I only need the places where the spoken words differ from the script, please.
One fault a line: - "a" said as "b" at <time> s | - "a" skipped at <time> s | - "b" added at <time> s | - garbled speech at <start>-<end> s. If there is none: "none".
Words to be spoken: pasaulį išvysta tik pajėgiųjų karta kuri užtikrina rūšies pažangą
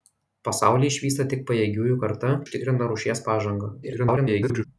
- "kuri" skipped at 2.3 s
- garbled speech at 3.8-4.6 s